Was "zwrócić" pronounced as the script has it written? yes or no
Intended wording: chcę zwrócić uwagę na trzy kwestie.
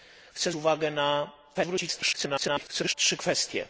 no